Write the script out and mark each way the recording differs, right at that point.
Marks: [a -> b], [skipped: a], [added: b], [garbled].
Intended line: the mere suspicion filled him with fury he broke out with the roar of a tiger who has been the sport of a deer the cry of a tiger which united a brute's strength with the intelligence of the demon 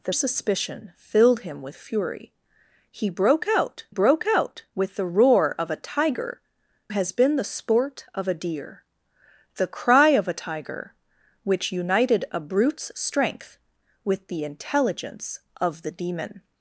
the [skipped: mere] suspicion filled him with fury he broke out [added: broke out] with the roar of a tiger [skipped: who] has been the sport of a deer the cry of a tiger which united a brute's strength with the intelligence of the demon